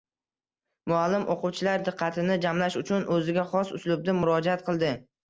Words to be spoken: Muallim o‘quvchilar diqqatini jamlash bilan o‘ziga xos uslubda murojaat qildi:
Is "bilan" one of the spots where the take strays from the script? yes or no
yes